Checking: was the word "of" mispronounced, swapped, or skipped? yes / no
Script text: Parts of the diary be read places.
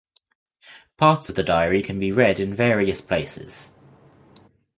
no